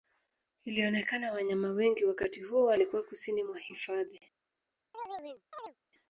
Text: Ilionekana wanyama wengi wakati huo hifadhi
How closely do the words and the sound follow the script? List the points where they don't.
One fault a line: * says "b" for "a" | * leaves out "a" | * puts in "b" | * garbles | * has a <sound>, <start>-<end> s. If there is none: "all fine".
* puts in "walikuwa kusini mwa"
* has a chirp, 4.9-5.8 s